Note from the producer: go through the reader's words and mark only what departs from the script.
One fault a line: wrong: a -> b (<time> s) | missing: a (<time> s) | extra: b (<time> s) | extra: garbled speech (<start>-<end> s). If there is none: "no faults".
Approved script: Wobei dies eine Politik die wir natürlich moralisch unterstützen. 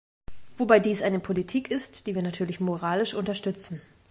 extra: ist (1.7 s)